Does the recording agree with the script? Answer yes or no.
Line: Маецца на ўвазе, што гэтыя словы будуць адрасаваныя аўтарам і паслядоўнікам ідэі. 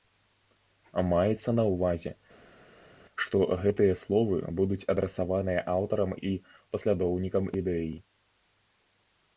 yes